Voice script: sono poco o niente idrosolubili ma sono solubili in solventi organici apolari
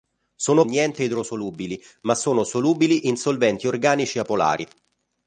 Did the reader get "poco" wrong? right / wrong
wrong